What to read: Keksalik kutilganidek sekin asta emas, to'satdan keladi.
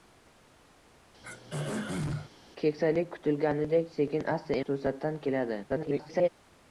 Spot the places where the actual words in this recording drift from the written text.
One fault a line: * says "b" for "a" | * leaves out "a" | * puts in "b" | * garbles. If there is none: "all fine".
* leaves out "emas"
* garbles